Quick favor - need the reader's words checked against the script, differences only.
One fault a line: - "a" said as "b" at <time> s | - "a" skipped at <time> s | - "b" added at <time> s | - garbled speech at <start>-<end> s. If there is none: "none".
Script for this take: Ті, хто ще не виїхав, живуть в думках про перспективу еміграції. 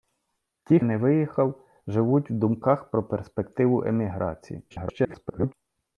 - "хто ще" skipped at 0.8 s
- garbled speech at 4.7-5.5 s